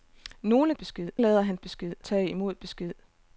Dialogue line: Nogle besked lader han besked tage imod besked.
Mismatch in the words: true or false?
false